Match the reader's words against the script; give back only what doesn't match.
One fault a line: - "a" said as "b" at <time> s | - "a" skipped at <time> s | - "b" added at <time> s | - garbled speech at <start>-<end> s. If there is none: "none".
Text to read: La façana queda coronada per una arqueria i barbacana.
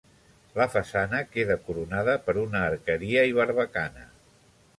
none